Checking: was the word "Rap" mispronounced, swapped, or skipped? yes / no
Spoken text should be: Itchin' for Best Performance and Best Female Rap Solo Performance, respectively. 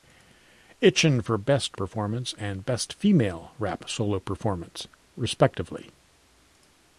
no